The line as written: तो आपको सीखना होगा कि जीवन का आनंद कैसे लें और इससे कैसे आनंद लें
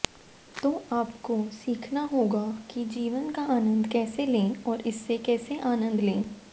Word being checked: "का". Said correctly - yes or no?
yes